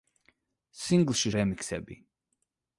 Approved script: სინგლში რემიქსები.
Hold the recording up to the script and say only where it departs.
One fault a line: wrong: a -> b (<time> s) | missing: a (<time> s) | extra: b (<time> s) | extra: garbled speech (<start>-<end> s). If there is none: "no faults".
no faults